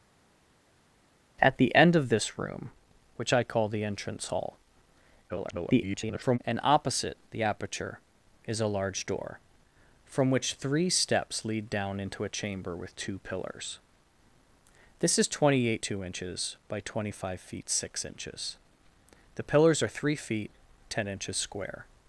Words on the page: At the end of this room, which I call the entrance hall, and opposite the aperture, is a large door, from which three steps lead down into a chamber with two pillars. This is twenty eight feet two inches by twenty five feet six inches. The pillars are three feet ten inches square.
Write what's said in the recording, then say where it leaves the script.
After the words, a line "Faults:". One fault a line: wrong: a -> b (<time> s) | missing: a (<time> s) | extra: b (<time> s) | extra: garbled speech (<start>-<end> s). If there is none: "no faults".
At the end of this room, which I call the entrance hall, [garbled] and opposite the aperture, is a large door, from which three steps lead down into a chamber with two pillars. This is twenty eight two inches by twenty five feet six inches. The pillars are three feet ten inches square.
Faults:
extra: garbled speech (5.3-6.4 s)
missing: feet (15.8 s)